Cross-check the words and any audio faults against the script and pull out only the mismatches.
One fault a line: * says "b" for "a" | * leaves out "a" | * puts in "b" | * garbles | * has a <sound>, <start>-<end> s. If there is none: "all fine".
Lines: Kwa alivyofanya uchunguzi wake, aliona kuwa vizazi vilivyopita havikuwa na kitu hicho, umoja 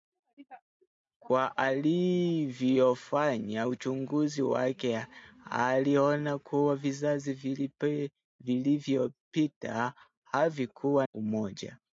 * leaves out "na kitu hicho"